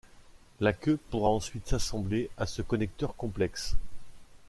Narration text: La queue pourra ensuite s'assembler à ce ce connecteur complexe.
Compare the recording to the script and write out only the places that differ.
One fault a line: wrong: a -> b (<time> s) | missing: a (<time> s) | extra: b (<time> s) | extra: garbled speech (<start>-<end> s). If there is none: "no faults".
missing: ce (2.6 s)